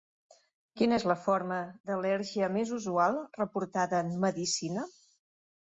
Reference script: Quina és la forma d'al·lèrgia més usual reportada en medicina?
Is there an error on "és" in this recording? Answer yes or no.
no